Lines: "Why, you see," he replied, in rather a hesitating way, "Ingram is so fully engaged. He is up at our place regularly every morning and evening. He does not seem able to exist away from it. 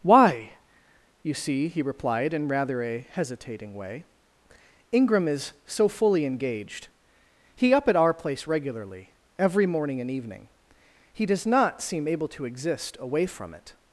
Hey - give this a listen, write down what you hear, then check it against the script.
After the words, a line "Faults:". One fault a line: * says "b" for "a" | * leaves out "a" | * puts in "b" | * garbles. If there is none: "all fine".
"Why, you see," he replied, in rather a hesitating way, "Ingram is so fully engaged. He up at our place regularly every morning and evening. He does not seem able to exist away from it.
Faults:
* leaves out "is"